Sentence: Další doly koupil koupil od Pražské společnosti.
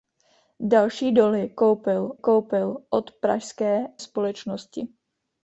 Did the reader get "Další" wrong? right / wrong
right